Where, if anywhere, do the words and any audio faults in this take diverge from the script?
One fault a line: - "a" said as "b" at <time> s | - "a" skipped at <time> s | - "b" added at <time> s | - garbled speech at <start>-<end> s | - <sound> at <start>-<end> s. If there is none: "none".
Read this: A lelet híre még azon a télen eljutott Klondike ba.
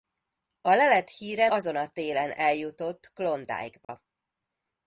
- "még" skipped at 1.5 s
- dropout at 3.8-3.9 s